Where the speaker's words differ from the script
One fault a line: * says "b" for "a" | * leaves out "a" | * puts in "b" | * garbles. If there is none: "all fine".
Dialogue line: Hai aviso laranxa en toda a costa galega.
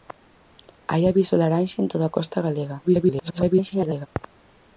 * garbles